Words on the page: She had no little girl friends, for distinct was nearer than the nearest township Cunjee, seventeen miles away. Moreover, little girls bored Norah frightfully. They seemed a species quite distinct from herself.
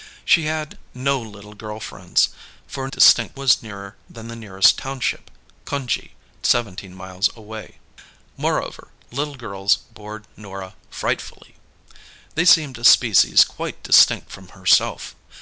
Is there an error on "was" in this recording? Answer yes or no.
no